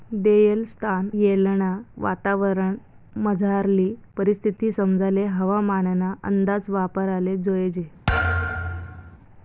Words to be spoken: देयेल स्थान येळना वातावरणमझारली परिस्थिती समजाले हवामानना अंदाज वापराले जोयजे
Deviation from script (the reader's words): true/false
false